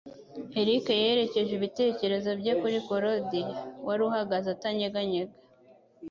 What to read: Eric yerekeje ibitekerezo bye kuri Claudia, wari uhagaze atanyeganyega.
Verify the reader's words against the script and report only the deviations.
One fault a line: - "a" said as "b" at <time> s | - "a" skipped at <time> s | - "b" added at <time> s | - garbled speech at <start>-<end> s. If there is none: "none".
none